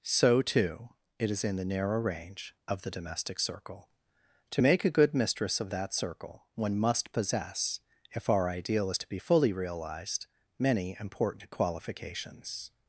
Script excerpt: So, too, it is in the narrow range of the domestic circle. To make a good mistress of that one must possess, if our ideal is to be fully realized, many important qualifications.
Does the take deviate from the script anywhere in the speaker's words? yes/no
yes